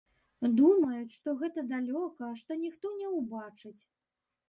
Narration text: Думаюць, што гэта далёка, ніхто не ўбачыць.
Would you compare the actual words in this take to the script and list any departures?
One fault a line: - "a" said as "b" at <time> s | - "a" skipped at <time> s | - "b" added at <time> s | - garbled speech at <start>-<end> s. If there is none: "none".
- "што" added at 2.4 s